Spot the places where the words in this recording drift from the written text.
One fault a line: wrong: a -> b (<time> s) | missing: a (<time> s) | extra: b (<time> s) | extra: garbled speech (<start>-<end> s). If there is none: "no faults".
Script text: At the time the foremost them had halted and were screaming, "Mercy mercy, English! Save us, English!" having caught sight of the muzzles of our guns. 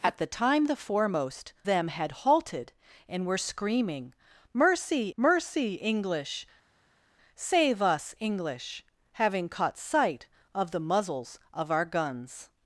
no faults